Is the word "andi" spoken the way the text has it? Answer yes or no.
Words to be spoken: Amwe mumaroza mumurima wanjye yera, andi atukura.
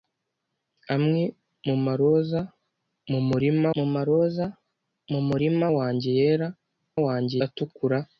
no